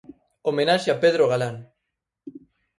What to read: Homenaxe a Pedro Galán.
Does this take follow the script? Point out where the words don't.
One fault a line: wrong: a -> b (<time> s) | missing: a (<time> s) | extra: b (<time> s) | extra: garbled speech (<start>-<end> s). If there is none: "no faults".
no faults